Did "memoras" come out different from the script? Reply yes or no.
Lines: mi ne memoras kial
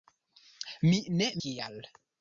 yes